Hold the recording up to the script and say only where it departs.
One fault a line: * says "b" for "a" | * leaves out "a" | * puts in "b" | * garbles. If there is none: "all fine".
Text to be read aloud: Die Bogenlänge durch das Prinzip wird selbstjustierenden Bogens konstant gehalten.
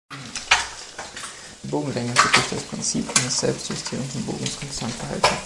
* puts in "wird"
* says "eines" for "wird"